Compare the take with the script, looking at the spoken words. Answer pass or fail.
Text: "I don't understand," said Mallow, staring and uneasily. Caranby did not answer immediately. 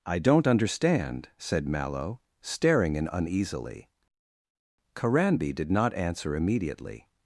fail